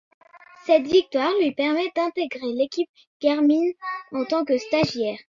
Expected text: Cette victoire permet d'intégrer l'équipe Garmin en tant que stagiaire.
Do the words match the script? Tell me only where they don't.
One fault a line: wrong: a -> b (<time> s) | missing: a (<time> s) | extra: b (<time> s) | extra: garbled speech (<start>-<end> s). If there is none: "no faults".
extra: lui (1.4 s)